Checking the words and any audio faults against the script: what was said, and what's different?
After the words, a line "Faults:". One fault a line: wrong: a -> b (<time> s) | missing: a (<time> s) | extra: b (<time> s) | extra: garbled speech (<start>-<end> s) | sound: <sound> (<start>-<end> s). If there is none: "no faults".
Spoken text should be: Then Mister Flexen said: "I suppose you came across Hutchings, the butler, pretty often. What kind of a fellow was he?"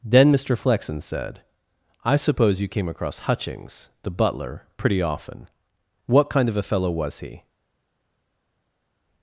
Then Mister Flexen said: "I suppose you came across Hutchings, the butler, pretty often. What kind of a fellow was he?"
Faults:
no faults